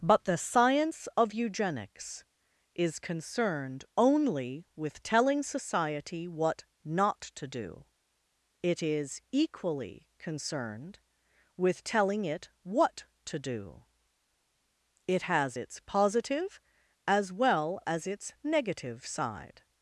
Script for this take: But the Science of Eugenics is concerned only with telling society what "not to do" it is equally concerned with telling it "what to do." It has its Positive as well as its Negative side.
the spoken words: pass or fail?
pass